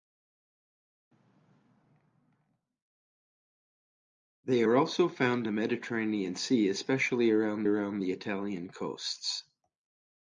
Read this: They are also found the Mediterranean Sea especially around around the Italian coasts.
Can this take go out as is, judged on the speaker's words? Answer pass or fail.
pass